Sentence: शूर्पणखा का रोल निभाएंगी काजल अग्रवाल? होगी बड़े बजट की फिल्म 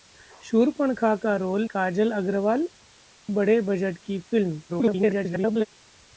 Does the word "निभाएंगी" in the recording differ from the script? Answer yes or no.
yes